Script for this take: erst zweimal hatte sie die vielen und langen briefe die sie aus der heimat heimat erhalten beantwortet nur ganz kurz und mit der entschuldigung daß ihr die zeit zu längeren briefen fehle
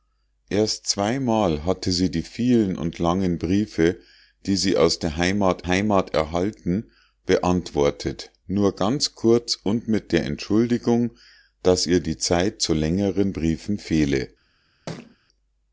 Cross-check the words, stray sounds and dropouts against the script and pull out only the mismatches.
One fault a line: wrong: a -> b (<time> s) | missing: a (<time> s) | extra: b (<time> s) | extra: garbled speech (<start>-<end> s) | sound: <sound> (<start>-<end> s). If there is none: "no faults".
sound: thud (14.9-15.2 s)